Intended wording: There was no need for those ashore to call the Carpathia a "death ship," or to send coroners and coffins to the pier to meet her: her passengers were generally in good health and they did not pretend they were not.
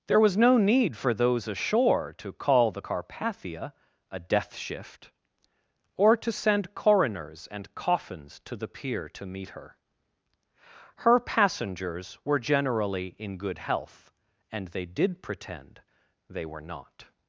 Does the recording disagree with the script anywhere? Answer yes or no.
yes